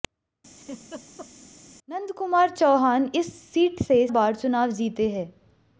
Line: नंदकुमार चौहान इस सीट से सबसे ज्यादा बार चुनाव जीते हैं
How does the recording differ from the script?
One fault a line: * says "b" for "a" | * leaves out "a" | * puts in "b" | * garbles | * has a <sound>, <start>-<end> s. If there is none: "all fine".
* has a laugh, 0.6-1.3 s
* leaves out "सबसे ज्यादा"